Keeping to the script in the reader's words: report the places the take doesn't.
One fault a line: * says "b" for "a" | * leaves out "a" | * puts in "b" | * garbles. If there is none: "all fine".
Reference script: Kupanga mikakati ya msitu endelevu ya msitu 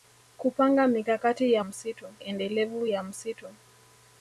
all fine